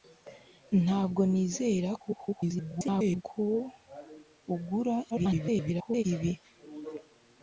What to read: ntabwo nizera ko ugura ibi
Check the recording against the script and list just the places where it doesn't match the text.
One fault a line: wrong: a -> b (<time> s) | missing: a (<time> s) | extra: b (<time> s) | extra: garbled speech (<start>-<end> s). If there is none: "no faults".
extra: garbled speech (2.0-3.2 s)
extra: garbled speech (5.1-6.0 s)